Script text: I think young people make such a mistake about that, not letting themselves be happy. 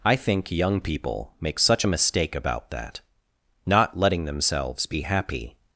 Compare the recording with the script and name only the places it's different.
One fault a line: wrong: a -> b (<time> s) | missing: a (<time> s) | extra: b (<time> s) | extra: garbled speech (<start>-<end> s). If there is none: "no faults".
no faults